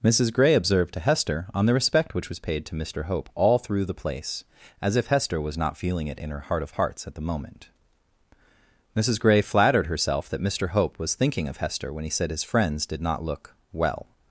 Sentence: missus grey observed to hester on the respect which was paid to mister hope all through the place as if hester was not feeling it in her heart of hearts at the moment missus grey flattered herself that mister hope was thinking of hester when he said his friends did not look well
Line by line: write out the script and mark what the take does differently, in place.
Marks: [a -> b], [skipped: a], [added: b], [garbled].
missus grey observed to hester on the respect which was paid to mister hope all through the place as if hester was not feeling it in her heart of hearts at the moment missus grey flattered herself that mister hope was thinking of hester when he said his friends did not look well